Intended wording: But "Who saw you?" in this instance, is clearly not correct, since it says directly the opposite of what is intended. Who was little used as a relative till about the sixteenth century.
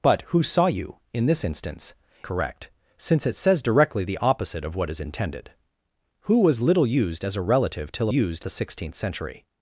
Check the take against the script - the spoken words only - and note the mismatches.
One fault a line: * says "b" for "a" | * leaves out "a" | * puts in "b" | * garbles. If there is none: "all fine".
* leaves out "is clearly not"
* says "used" for "about"